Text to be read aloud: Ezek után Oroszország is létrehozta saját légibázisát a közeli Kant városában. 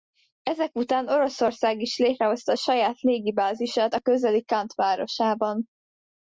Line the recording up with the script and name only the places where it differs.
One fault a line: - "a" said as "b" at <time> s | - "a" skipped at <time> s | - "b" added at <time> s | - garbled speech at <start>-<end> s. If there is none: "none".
none